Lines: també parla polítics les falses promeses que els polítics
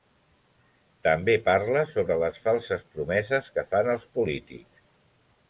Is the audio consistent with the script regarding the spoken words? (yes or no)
no